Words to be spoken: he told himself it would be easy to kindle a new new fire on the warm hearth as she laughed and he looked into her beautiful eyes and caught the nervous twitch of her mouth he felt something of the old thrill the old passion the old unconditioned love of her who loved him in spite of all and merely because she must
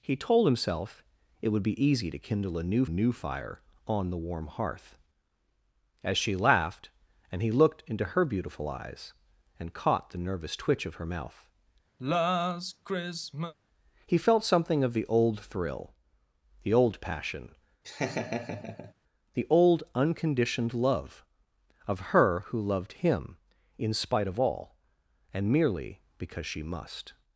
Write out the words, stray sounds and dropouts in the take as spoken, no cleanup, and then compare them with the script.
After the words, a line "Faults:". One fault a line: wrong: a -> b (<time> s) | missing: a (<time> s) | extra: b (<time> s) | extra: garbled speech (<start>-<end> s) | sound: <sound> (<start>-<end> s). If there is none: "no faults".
he told himself it would be easy to kindle a new new fire on the warm hearth as she laughed and he looked into her beautiful eyes and caught the nervous twitch of her mouth he felt something of the old thrill the old passion the old unconditioned love of her who loved him in spite of all and merely because she must
Faults:
sound: sigh (12.0-13.5 s)
sound: laugh (17.8-18.9 s)